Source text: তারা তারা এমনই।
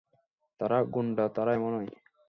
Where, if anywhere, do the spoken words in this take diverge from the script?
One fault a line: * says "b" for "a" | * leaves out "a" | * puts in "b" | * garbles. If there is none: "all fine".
* puts in "গুন্ডা"